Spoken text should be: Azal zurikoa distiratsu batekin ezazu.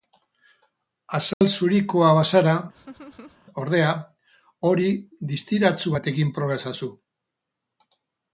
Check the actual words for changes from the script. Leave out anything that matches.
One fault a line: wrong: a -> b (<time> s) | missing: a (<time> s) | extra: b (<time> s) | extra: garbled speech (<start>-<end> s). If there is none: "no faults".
extra: bazara ordea hori (2.2 s)
extra: proba (6.4 s)